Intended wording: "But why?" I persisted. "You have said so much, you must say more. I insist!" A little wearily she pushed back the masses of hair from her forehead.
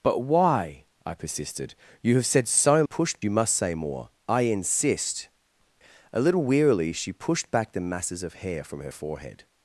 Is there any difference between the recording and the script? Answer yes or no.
yes